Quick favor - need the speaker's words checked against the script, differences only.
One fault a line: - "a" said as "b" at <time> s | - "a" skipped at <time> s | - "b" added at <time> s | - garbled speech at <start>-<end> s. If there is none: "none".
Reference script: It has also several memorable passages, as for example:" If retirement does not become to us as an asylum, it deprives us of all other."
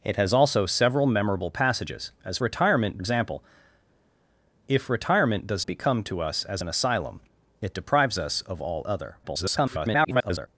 - "for" said as "retirement" at 2.4 s
- "not" skipped at 5.7 s
- garbled speech at 9.2-10.5 s